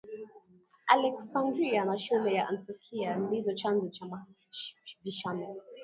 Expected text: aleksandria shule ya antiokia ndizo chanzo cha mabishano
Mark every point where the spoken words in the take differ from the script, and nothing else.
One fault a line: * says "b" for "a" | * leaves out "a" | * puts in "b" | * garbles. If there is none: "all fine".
* puts in "na"